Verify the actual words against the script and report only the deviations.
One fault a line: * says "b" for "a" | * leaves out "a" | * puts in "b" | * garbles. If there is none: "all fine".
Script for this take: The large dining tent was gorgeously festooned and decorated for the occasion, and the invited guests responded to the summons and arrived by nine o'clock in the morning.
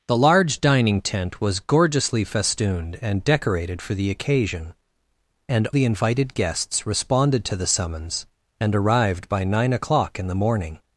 all fine